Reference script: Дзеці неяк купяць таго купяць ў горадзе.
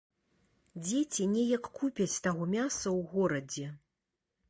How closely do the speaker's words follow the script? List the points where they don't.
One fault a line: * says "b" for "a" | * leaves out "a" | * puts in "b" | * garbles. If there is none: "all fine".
* says "мяса" for "купяць"